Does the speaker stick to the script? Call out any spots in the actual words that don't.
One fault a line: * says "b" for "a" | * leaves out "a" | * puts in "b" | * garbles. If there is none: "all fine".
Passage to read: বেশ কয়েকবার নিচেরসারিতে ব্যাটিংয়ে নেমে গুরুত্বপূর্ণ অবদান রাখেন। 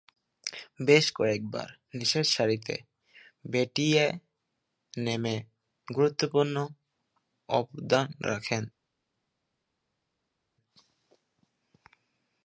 all fine